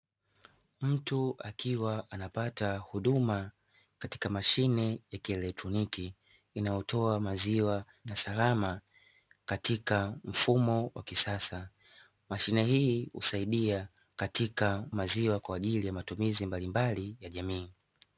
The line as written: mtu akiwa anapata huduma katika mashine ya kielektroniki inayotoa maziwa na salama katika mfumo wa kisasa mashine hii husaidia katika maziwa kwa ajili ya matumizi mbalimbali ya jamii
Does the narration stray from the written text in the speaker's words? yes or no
no